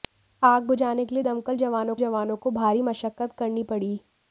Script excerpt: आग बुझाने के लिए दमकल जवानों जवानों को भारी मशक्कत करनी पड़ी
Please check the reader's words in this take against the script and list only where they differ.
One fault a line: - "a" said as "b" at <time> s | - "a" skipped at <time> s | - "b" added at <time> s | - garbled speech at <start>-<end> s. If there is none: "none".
none